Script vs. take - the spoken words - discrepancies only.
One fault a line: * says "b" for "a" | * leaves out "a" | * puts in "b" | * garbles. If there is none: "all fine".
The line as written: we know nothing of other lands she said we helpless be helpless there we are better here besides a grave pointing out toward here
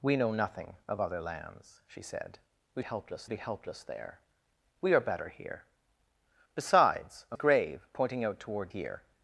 all fine